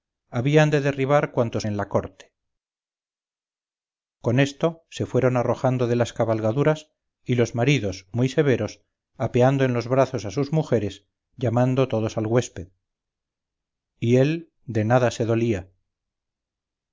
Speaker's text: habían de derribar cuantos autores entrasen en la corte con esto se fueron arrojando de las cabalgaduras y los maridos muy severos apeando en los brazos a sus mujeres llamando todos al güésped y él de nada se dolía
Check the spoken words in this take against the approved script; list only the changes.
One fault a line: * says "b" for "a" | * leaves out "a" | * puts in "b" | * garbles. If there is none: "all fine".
* leaves out "autores entrasen"